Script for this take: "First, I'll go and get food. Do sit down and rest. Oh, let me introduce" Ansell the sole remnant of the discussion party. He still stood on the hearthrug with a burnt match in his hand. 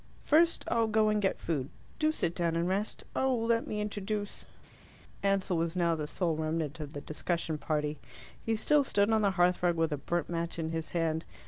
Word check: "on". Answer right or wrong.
right